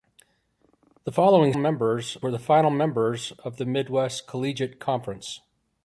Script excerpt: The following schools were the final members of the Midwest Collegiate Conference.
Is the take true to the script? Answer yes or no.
no